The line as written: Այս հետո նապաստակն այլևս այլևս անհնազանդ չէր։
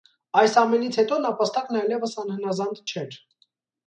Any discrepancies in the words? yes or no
yes